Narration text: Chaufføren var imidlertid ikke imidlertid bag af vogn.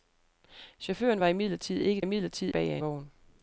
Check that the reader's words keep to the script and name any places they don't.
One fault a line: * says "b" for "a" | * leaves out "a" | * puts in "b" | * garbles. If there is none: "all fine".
all fine